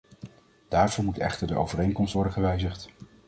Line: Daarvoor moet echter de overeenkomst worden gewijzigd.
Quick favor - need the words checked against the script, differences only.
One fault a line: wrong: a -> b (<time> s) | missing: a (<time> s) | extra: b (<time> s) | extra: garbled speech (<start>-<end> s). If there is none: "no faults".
no faults